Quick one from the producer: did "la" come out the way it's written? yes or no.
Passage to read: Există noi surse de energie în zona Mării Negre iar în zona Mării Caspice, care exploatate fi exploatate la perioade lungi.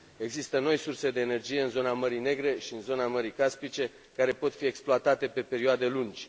no